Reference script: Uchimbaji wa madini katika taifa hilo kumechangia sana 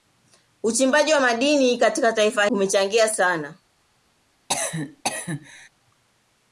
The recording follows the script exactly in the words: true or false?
false